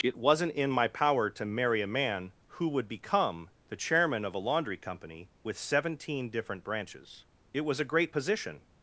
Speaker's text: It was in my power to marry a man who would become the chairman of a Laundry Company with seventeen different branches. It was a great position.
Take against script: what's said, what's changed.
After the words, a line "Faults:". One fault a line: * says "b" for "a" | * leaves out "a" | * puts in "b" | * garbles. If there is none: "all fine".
It wasn't in my power to marry a man who would become the chairman of a Laundry Company with seventeen different branches. It was a great position.
Faults:
* says "wasn't" for "was"